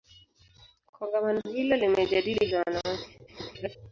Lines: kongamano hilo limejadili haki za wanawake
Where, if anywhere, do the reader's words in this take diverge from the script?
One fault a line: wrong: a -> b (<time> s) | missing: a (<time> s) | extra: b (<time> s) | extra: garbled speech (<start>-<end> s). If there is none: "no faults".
missing: haki (2.5 s)
extra: garbled speech (3.3-3.8 s)